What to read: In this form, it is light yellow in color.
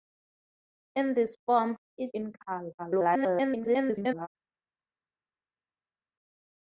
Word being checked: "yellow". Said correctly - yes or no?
no